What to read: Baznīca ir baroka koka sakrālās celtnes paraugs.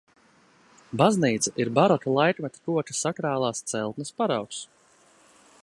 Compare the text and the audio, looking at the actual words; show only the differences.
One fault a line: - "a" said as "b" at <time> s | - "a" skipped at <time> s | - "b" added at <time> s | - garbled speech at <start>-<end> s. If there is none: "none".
- "laikmeta" added at 2.1 s